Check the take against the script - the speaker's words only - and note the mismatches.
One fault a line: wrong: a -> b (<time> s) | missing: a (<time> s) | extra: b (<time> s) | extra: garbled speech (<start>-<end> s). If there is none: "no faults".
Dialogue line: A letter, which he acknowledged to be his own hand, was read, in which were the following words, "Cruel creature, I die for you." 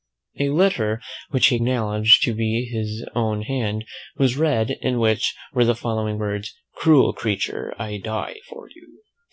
no faults